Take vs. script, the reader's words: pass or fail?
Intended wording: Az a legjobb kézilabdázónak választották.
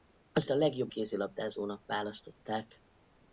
pass